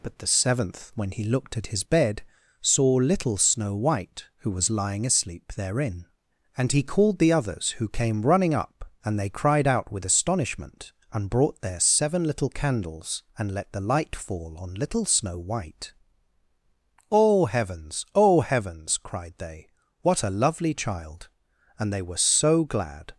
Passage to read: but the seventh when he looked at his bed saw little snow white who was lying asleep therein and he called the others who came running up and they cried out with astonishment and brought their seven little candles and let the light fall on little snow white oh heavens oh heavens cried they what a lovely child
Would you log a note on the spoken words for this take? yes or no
yes